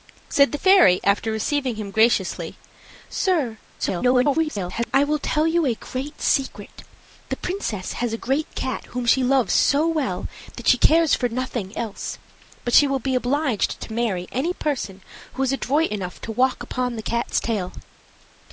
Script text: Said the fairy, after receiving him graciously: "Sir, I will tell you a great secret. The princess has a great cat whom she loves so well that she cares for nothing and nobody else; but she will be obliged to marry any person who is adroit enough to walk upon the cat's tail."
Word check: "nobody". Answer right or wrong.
wrong